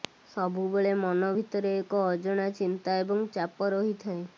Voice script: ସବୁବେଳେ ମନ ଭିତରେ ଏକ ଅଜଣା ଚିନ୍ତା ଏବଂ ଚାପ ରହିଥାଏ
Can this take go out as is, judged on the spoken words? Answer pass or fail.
pass